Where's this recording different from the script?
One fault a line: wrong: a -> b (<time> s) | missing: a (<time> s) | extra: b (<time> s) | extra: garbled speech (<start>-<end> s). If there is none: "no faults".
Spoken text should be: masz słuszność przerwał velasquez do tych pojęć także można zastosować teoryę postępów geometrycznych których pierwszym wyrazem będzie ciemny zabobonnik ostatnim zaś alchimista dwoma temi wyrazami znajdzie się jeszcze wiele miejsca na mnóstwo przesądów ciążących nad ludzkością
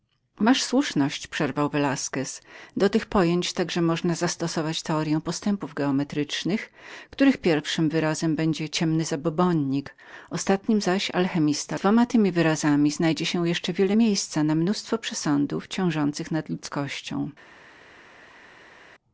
no faults